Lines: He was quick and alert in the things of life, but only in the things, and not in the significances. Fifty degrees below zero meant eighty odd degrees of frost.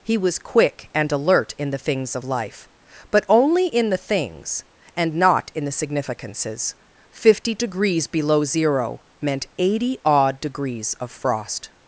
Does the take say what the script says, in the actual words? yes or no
yes